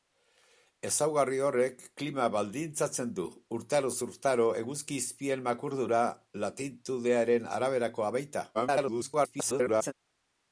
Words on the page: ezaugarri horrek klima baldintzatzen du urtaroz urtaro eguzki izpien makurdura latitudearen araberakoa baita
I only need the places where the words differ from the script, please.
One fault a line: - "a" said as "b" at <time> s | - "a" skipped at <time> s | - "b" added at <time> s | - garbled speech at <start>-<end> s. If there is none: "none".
- garbled speech at 8.5-9.9 s